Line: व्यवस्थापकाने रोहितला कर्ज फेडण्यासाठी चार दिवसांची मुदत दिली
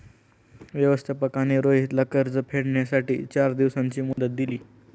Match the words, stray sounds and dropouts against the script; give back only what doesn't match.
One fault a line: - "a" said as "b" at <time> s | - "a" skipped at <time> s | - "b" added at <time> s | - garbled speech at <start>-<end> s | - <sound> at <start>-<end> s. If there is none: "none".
- dropout at 4.1-4.2 s